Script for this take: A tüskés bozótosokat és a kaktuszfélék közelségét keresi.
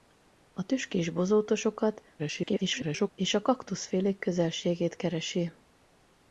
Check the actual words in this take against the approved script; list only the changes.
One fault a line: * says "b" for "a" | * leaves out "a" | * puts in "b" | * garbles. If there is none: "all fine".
* garbles